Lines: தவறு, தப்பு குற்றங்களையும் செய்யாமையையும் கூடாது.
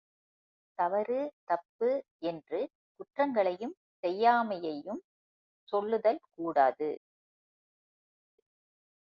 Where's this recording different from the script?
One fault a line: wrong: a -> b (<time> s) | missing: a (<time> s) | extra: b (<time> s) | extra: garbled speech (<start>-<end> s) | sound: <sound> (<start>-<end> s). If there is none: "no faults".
extra: என்று (2.2 s)
extra: சொல்லுதல் (5.7 s)